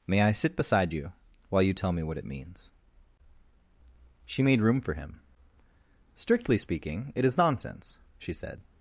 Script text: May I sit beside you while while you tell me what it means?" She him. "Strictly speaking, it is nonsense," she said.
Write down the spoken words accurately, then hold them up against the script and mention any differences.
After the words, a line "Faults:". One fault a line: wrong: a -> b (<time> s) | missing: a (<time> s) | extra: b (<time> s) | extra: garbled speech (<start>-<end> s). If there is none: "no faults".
May I sit beside you while you tell me what it means?" She made room for him. "Strictly speaking, it is nonsense," she said.
Faults:
missing: while (1.6 s)
extra: made room for (4.4 s)